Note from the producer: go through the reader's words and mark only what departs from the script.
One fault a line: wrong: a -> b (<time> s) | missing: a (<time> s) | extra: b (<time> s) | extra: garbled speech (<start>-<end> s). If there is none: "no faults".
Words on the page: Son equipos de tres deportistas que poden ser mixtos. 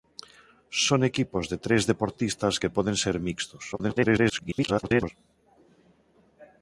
extra: garbled speech (3.7-5.1 s)